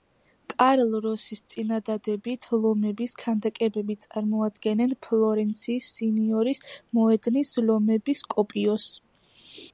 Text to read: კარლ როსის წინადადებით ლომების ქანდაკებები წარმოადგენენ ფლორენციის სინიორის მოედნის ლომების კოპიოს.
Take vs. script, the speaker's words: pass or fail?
pass